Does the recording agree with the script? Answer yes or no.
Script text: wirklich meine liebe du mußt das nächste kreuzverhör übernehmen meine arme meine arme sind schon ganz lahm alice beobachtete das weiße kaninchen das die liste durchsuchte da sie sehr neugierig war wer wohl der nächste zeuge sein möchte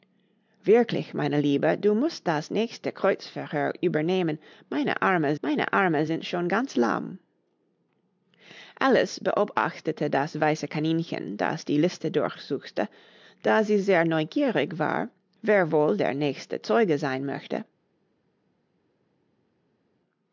yes